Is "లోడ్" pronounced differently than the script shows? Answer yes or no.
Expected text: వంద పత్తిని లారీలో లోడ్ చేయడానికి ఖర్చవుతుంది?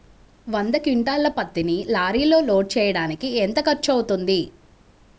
no